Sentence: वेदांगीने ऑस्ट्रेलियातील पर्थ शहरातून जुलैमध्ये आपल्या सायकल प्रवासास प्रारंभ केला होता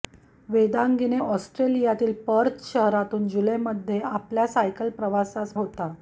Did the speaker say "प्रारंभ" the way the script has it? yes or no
no